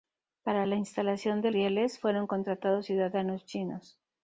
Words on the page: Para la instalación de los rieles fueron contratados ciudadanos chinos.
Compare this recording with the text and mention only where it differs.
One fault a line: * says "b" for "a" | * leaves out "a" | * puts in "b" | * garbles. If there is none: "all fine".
* leaves out "los"